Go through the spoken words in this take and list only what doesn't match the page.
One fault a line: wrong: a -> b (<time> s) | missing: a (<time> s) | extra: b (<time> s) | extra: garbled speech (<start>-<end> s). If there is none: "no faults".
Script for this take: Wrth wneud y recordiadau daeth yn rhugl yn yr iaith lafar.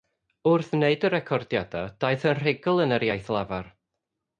no faults